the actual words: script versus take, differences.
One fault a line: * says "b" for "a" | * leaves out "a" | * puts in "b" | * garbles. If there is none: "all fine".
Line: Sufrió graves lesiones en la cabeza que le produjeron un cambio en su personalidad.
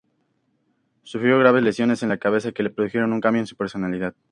all fine